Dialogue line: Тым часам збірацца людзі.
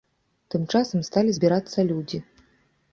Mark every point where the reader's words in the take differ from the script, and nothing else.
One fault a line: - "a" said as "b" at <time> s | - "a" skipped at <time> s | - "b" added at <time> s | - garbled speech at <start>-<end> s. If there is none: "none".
- "сталі" added at 1.1 s